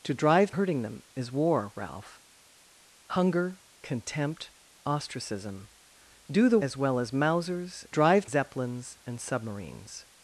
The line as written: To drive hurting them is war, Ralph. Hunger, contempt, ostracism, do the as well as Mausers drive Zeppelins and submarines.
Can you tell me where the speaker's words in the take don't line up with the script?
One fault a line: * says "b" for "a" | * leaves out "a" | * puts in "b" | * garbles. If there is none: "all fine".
all fine